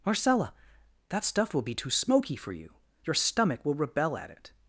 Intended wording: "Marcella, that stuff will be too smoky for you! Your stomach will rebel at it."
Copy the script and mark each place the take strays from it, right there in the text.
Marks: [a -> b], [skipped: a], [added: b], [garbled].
"Marcella, that stuff will be too smoky for you! Your stomach will rebel at it."